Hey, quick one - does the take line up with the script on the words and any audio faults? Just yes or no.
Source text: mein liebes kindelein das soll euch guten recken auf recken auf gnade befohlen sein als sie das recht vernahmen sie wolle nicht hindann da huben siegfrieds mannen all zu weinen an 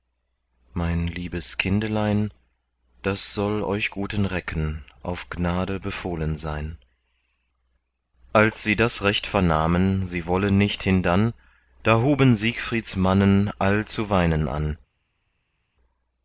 no